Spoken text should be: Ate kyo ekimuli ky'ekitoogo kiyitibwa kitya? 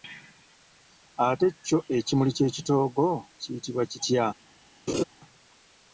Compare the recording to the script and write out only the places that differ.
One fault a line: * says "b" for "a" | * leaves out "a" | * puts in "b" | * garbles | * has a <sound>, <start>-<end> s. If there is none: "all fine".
* has a laugh, 4.9-5.0 s